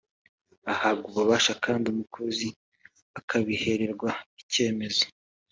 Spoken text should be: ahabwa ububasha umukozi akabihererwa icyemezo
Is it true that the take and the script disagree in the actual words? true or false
true